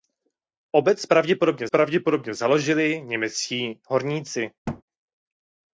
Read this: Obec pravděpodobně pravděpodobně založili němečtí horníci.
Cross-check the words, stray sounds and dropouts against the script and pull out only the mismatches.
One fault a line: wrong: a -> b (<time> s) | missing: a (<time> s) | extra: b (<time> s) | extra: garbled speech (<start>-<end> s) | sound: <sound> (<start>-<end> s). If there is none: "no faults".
sound: thud (4.7-4.8 s)